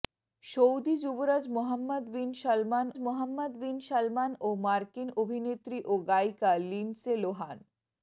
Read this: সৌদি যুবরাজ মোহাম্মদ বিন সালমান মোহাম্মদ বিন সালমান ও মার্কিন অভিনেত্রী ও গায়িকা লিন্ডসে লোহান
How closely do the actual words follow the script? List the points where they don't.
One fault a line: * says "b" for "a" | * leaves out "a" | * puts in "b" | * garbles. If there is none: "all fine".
all fine